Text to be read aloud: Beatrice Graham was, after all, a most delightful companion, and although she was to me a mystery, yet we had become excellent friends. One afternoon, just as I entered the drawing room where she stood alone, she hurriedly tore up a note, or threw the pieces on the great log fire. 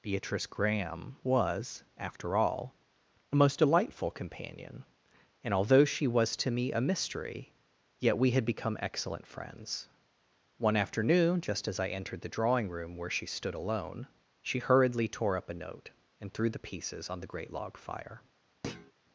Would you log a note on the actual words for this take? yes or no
yes